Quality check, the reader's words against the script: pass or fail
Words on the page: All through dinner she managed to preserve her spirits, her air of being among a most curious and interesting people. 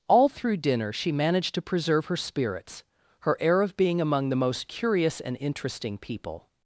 fail